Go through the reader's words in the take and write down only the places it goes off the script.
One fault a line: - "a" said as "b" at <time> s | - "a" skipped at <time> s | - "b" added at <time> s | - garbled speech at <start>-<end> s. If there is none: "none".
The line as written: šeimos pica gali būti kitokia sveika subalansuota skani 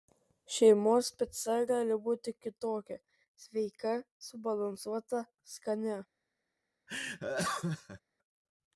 none